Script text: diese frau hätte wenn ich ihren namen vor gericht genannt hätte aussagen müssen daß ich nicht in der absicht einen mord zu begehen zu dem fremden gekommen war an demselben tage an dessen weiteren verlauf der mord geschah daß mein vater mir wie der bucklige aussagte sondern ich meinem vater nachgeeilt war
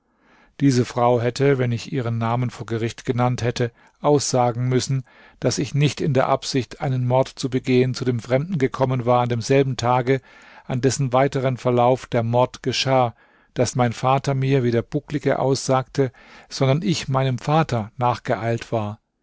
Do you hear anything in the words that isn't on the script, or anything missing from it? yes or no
no